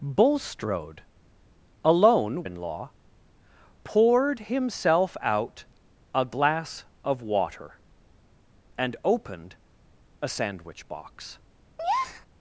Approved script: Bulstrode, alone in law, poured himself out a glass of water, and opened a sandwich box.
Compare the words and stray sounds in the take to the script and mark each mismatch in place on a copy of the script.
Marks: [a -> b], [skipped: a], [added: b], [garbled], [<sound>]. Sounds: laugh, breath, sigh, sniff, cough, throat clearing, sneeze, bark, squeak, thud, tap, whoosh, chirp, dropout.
Bulstrode, alone in law, poured himself out a glass of water, and opened a sandwich box. [breath]